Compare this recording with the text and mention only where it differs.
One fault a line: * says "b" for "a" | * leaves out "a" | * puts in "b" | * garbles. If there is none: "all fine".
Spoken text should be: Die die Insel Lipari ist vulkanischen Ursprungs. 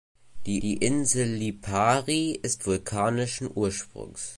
all fine